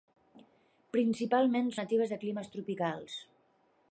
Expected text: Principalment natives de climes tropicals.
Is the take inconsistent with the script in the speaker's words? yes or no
no